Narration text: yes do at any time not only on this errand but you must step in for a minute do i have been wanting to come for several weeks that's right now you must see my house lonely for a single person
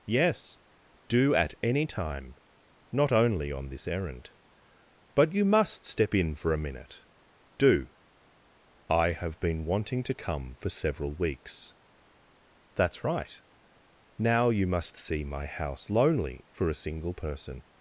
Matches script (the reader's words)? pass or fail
pass